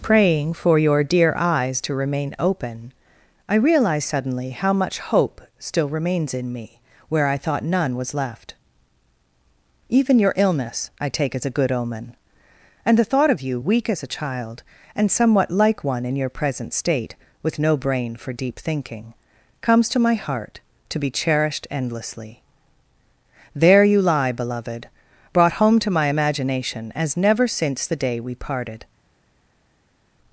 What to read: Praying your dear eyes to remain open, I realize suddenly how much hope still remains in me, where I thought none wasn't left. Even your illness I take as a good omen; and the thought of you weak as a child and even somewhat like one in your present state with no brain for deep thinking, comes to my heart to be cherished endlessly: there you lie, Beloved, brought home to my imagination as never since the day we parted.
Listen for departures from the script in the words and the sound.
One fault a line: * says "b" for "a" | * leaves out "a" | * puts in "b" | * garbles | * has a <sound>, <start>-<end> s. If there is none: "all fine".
* puts in "for"
* says "was" for "wasn't"
* leaves out "even"